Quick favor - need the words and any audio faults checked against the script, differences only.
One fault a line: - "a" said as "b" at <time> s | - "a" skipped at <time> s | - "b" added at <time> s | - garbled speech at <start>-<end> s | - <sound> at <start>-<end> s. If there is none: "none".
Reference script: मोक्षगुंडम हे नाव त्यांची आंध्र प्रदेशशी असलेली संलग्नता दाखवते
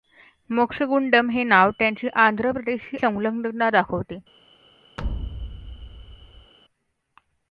- "असलेली" skipped at 3.0 s
- thud at 5.0-6.5 s